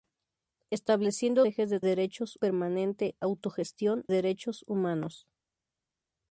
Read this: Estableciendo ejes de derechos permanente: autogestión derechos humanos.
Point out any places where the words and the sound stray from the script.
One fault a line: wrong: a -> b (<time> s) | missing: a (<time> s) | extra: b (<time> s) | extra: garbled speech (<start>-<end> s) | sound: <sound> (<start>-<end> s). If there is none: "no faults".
no faults